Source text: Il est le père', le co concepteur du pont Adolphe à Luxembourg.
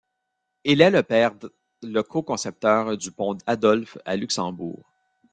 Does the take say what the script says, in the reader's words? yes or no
no